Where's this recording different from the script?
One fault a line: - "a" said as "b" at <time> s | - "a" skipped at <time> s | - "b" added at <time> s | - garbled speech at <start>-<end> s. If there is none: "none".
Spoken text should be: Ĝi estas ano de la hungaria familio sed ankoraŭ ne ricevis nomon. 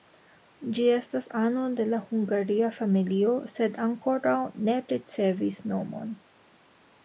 none